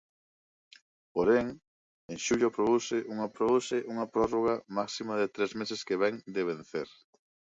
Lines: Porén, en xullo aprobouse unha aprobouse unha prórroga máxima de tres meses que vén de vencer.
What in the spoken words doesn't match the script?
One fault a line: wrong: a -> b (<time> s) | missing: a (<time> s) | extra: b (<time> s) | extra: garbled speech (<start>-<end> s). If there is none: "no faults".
no faults